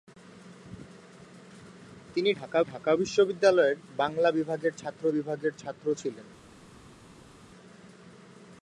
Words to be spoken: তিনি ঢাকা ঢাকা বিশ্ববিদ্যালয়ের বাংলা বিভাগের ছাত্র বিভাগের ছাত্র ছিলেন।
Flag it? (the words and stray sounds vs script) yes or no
no